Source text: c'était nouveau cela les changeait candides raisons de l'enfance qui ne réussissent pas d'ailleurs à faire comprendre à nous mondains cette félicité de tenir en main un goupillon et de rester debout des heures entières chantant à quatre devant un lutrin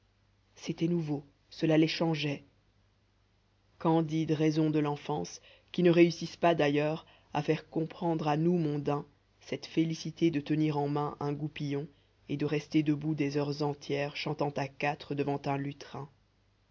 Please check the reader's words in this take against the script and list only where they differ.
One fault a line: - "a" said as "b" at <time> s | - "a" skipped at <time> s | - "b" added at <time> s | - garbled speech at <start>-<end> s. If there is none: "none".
none